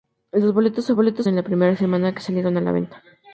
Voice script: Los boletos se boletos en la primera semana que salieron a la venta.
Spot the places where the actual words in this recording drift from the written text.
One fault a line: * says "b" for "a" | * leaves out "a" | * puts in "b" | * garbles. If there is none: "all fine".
all fine